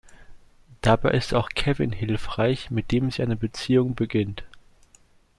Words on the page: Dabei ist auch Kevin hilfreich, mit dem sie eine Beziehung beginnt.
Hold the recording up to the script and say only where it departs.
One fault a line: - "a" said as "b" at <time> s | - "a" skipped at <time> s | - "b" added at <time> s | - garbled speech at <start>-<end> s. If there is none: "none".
none